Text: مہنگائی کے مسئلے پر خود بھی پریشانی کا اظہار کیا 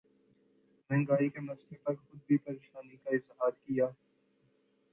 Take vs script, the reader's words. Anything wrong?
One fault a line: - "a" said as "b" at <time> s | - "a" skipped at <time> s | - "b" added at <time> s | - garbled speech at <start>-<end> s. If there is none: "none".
none